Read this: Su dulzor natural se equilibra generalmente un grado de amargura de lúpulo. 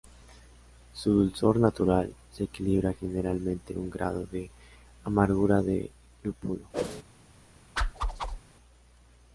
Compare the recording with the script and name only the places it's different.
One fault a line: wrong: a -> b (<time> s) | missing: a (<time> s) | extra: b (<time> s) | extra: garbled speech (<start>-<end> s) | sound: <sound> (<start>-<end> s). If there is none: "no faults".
sound: whoosh (6.7-7.0 s)
sound: whoosh (7.8-8.4 s)